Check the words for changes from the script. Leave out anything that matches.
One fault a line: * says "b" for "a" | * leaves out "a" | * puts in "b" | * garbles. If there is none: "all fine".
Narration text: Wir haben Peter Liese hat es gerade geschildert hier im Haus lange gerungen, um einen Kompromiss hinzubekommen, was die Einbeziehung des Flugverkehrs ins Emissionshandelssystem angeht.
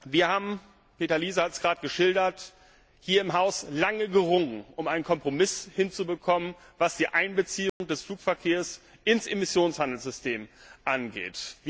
all fine